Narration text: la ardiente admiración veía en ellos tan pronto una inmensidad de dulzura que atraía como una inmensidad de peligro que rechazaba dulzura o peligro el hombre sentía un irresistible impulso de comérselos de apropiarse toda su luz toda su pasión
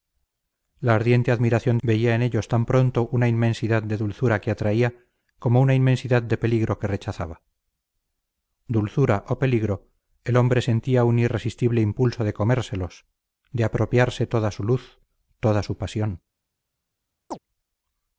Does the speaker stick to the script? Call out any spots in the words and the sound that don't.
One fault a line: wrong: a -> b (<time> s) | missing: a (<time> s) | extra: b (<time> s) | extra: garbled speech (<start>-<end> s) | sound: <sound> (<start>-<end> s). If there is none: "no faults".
sound: chirp (17.3-17.4 s)